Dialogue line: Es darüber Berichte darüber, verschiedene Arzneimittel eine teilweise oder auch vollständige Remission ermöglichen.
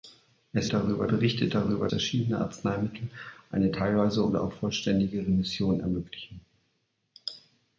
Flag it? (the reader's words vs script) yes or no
no